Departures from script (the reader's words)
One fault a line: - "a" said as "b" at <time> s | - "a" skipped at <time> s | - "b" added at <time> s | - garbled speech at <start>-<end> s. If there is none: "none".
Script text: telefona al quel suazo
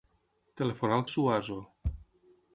- "quel" skipped at 1.1 s